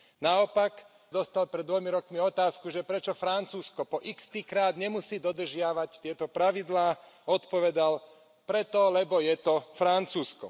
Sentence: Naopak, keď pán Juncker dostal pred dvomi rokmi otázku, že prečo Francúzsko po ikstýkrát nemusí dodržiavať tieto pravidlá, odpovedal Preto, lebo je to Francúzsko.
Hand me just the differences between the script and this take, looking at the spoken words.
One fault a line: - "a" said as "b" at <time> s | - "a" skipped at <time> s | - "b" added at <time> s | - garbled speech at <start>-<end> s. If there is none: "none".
- "keď pán Juncker" skipped at 0.8 s